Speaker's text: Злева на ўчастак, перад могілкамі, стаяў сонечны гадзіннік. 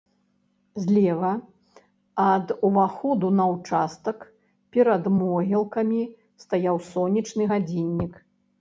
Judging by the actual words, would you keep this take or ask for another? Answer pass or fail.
fail